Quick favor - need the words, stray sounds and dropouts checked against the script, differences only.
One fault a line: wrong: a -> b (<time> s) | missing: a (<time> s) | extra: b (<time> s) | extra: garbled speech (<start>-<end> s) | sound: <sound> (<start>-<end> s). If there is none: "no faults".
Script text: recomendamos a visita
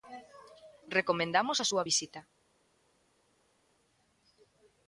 extra: súa (1.7 s)